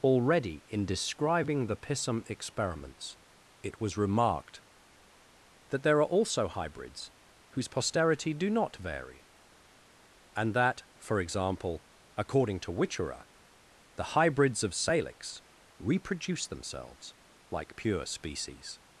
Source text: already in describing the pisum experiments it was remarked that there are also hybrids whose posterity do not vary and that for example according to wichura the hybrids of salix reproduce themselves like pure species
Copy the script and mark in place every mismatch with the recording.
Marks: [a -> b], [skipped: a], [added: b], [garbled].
already in describing the pisum experiments it was remarked that there are also hybrids whose posterity do not vary and that for example according to wichura the hybrids of salix reproduce themselves like pure species